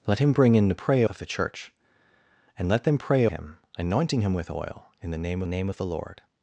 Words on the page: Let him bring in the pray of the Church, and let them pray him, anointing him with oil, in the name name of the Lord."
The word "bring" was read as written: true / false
true